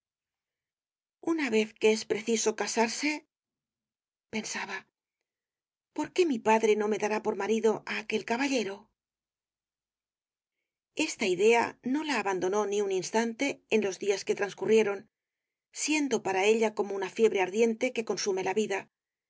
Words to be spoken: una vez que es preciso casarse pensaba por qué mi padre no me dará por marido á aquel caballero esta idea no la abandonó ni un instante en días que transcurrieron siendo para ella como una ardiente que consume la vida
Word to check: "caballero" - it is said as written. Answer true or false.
true